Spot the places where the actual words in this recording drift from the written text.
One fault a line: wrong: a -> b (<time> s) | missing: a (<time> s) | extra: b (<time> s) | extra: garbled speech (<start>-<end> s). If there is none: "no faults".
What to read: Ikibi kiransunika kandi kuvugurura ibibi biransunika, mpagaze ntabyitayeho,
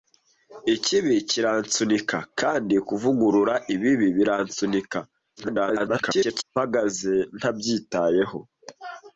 extra: garbled speech (5.4-6.4 s)